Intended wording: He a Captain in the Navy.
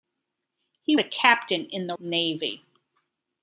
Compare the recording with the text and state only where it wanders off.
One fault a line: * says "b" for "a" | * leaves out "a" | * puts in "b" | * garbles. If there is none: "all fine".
all fine